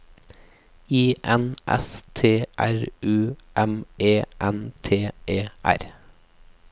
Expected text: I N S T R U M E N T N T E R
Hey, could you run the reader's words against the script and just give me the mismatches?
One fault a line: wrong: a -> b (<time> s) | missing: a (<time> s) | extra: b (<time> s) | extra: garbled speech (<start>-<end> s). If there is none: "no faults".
missing: N T (5.1 s)